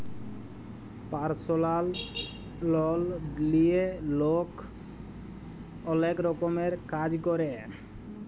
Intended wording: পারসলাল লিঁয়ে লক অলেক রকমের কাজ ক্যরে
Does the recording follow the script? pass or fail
fail